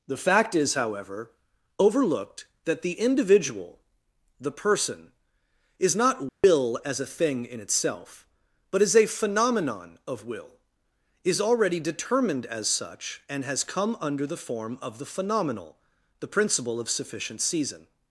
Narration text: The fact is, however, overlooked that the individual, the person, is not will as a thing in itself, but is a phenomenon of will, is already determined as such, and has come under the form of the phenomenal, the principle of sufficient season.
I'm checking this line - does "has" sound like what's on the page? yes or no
yes